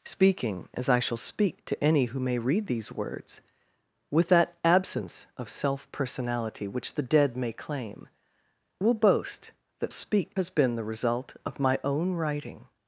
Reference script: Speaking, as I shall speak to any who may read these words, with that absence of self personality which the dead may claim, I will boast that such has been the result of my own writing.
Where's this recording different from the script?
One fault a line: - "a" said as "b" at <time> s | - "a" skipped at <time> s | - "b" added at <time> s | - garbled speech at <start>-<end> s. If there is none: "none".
- "I" skipped at 8.1 s
- "such" said as "speak" at 9.9 s